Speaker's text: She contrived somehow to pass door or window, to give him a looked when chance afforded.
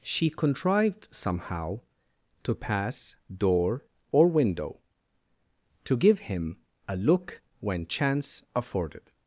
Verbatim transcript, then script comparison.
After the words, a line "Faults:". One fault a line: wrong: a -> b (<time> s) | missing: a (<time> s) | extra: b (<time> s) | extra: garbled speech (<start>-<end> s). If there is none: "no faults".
She contrived somehow to pass door or window, to give him a look when chance afforded.
Faults:
wrong: looked -> look (7.0 s)